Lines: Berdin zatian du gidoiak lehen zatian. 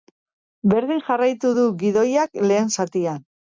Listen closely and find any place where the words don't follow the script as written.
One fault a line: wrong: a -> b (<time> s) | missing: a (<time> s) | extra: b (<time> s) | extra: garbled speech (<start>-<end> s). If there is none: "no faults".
wrong: zatian -> jarraitu (1.1 s)